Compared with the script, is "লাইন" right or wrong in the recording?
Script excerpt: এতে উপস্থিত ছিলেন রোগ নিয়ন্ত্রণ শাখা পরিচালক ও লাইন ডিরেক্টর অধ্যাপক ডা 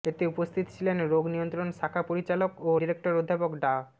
wrong